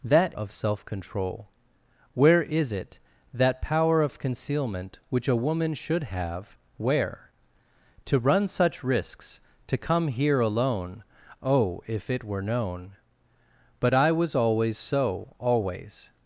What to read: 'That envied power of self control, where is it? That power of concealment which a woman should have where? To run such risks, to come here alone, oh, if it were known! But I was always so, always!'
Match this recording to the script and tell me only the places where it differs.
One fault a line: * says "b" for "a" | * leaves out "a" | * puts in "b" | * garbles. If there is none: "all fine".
* leaves out "envied power"